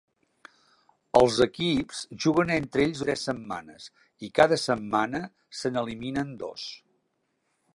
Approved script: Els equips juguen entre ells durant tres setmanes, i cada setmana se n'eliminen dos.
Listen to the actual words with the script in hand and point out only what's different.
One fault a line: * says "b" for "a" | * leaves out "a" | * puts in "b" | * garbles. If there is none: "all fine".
* leaves out "durant"